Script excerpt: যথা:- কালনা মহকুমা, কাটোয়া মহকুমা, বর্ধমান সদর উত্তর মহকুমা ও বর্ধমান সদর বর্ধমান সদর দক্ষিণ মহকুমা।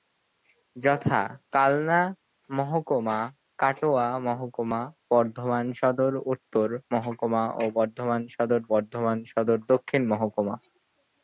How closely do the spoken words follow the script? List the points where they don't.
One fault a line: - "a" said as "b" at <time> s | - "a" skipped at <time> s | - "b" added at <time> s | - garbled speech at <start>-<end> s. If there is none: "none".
none